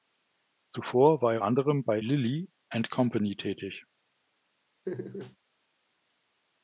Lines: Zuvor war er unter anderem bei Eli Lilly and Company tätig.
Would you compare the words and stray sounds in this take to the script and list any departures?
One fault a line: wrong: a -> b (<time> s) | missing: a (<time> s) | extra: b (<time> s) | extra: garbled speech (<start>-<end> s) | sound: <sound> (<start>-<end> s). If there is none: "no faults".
missing: unter (1.4 s)
missing: Eli (2.0 s)
sound: laugh (4.9-5.4 s)